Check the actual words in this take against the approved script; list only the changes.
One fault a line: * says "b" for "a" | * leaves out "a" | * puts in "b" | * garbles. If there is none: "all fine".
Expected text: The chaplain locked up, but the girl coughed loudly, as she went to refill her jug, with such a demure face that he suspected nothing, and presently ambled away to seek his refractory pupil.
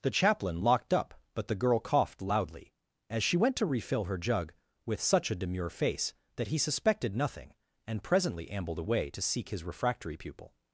all fine